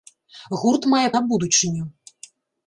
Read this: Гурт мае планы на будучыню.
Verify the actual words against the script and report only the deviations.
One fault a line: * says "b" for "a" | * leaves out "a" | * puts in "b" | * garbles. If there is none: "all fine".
* leaves out "планы"